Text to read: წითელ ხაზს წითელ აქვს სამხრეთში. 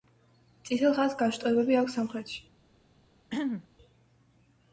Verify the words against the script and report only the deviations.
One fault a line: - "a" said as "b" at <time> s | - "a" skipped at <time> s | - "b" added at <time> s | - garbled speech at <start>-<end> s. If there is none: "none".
- "წითელ" said as "განშტოებები" at 1.2 s